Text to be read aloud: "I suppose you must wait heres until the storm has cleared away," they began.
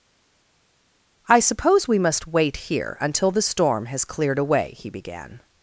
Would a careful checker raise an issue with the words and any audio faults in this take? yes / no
yes